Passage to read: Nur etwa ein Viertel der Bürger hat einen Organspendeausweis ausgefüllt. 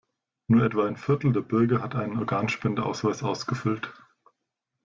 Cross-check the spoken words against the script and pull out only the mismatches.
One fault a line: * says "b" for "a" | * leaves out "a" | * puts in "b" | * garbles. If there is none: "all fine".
all fine